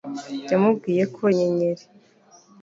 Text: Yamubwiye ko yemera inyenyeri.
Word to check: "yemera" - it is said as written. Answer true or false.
false